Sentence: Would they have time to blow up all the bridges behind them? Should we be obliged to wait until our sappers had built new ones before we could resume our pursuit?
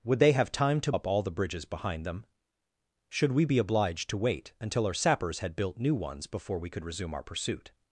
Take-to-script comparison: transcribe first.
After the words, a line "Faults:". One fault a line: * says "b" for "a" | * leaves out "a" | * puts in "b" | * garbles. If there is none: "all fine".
Would they have time to up all the bridges behind them? Should we be obliged to wait until our sappers had built new ones before we could resume our pursuit?
Faults:
* leaves out "blow"